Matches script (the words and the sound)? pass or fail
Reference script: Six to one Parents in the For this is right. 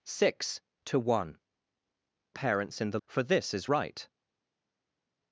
pass